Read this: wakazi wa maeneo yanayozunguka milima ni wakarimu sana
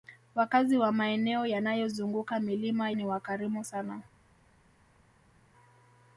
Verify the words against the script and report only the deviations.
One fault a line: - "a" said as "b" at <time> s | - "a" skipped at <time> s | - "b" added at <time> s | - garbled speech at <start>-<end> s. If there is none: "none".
none